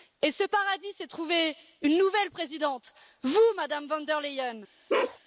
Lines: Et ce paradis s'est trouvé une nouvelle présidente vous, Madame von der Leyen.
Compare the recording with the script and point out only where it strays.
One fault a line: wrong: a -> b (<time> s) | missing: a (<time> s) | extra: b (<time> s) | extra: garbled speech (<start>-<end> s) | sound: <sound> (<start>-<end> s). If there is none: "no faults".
sound: bark (4.9-5.2 s)